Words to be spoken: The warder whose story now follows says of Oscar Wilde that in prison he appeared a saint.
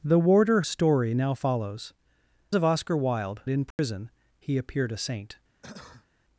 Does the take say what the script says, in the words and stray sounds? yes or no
no